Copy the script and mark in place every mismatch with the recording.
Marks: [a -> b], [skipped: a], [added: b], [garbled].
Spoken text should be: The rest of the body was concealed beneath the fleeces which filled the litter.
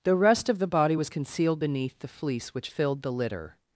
The rest of the body was concealed beneath the [fleeces -> fleece] which filled the litter.